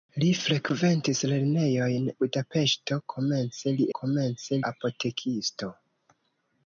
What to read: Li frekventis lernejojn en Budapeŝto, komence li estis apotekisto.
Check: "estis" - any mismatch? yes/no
yes